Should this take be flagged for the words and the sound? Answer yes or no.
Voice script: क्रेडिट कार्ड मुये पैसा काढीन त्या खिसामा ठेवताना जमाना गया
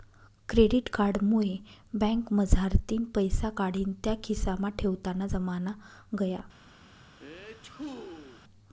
yes